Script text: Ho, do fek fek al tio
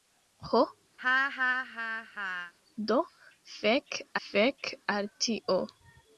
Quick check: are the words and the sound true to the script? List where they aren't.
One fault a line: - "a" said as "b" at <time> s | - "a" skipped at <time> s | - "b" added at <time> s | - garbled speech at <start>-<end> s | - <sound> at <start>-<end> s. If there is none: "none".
- laugh at 1.0-2.5 s